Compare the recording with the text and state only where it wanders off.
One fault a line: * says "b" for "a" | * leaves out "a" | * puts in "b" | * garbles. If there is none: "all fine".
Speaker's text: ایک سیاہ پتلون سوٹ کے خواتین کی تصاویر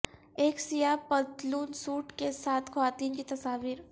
* puts in "ساتھ"